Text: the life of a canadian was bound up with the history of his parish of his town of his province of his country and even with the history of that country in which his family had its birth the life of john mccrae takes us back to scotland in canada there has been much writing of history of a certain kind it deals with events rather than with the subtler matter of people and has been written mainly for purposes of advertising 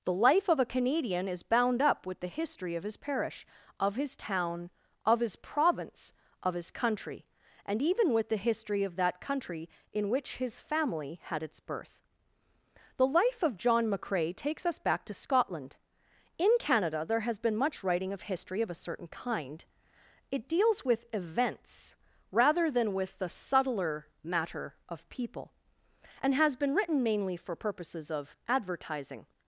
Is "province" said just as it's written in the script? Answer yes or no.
yes